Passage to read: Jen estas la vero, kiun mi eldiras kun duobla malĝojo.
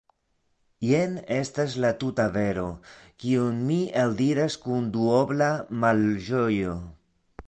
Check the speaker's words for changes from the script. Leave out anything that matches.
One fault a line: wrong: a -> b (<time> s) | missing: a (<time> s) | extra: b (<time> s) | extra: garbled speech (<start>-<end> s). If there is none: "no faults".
extra: tuta (2.0 s)